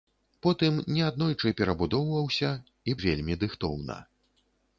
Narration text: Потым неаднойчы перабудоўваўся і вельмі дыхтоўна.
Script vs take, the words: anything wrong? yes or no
no